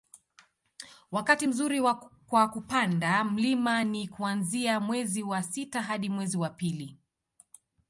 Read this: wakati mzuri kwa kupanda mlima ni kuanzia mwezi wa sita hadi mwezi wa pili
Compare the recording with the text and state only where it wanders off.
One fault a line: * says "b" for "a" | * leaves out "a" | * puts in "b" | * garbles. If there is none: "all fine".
all fine